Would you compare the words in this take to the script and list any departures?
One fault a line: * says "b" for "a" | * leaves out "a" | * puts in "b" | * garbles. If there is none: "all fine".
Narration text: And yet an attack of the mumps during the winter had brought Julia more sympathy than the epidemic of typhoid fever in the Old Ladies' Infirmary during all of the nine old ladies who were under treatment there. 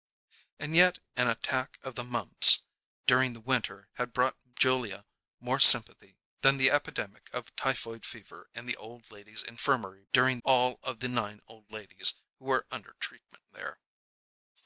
all fine